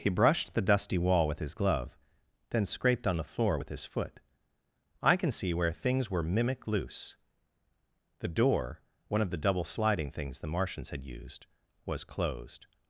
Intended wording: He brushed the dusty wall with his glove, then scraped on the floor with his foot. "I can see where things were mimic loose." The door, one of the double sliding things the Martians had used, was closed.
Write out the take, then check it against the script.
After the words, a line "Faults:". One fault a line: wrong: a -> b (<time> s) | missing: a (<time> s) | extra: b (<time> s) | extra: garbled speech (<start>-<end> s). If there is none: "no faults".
He brushed the dusty wall with his glove, then scraped on the floor with his foot. "I can see where things were mimic loose." The door, one of the double sliding things the Martians had used, was closed.
Faults:
no faults